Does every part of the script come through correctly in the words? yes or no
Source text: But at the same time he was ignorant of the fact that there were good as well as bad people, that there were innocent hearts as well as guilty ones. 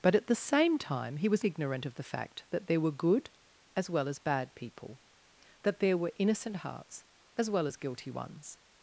yes